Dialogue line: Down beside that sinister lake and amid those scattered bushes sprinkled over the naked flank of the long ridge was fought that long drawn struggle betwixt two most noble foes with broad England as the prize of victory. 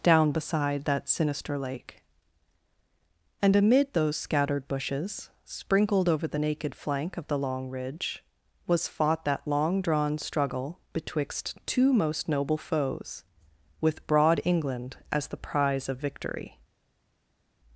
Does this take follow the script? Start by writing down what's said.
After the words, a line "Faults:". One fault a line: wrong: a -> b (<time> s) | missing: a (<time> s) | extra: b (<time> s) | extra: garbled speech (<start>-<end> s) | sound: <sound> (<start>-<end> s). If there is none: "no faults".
Down beside that sinister lake and amid those scattered bushes sprinkled over the naked flank of the long ridge was fought that long drawn struggle betwixt two most noble foes with broad England as the prize of victory.
Faults:
no faults